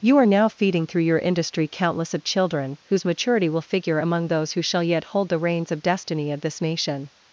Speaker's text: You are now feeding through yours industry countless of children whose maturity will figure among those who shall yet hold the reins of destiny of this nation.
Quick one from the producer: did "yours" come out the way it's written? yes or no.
no